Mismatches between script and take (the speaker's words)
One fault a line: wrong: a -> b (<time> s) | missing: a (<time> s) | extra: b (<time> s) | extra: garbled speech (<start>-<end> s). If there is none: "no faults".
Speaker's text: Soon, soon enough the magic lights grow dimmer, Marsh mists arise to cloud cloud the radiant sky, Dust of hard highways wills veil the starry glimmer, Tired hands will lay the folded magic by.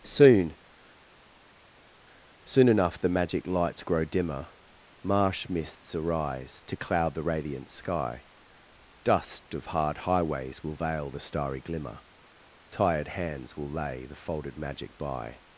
missing: cloud (7.1 s)
wrong: wills -> will (10.6 s)